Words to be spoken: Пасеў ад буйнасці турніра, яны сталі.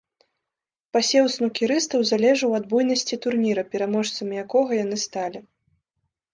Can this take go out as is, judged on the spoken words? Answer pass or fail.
fail